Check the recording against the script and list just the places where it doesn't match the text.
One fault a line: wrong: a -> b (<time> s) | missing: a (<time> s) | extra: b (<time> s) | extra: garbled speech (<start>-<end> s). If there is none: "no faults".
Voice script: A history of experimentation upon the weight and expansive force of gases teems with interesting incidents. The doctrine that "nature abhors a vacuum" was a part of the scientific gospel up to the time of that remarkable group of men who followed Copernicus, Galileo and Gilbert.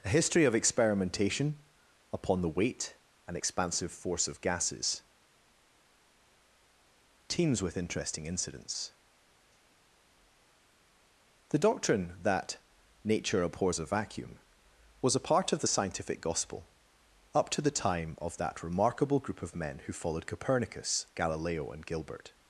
no faults